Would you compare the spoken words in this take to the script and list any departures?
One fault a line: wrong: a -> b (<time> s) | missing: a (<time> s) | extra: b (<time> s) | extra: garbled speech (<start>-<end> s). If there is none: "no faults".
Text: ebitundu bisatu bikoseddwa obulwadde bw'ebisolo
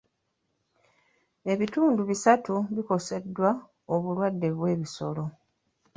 no faults